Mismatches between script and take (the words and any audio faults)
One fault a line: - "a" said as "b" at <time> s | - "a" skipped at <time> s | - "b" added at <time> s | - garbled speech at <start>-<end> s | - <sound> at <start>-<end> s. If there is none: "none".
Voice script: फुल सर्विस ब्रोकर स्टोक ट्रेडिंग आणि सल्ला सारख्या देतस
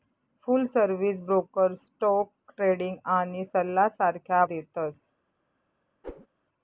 - whoosh at 6.0-6.3 s